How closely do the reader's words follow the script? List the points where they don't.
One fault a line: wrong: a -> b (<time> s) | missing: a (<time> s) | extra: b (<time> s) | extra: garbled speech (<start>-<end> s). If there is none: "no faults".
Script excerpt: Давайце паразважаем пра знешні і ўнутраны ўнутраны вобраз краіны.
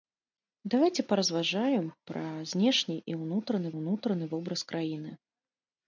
no faults